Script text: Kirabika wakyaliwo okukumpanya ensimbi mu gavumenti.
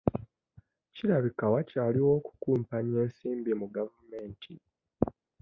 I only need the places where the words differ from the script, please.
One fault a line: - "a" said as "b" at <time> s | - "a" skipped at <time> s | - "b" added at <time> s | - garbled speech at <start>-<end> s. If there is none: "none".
none